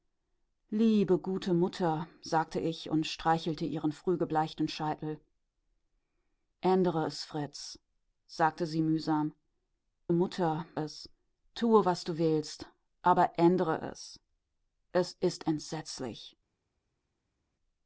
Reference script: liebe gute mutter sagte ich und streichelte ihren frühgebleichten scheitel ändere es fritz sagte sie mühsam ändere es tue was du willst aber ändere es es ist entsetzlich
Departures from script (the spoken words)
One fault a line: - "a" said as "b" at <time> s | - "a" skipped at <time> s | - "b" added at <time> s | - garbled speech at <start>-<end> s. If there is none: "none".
- "ändere" said as "mutter" at 10.1 s